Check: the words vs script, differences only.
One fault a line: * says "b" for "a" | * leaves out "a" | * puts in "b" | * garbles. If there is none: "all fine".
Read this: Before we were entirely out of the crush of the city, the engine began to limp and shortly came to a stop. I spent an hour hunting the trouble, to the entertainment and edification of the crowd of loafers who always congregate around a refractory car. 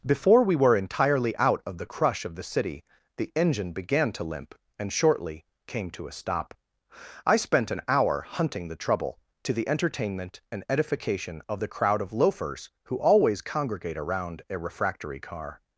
all fine